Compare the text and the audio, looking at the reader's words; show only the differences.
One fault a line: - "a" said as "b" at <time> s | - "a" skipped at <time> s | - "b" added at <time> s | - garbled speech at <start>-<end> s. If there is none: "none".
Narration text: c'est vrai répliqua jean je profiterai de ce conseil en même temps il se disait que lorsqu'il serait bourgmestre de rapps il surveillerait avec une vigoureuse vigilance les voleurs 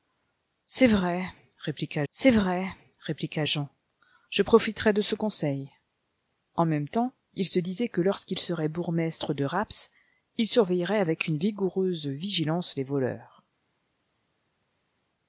- "c'est vrai répliqua" added at 2.1 s